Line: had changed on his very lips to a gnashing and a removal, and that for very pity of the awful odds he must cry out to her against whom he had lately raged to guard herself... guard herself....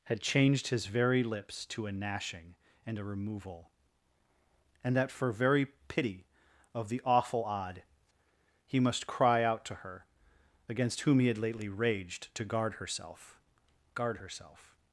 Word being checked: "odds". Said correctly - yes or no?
no